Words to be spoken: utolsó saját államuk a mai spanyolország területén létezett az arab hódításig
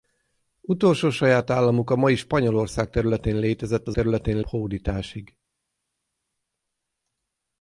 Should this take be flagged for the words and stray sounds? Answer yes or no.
yes